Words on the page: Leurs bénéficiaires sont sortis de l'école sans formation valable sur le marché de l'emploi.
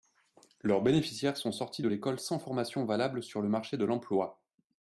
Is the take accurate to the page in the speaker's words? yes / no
yes